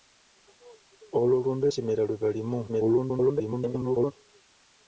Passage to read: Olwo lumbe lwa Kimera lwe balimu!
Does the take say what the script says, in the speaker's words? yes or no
no